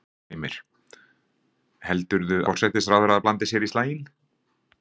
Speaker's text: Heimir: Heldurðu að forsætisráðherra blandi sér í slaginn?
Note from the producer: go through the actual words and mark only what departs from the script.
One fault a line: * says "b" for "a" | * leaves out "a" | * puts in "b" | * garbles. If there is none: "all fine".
* leaves out "að"